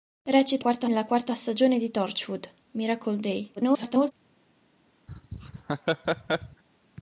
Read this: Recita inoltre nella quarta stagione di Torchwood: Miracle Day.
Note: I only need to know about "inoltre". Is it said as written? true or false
false